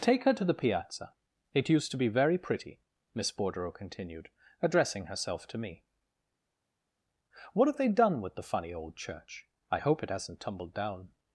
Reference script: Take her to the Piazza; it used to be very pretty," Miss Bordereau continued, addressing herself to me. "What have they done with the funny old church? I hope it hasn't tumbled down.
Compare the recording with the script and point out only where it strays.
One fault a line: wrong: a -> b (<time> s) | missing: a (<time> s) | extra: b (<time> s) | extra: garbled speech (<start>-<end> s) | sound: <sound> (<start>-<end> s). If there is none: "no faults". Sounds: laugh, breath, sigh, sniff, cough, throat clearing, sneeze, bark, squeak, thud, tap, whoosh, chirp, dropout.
no faults